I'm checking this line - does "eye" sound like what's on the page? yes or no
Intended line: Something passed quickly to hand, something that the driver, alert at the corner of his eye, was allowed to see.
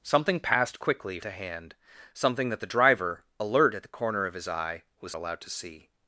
yes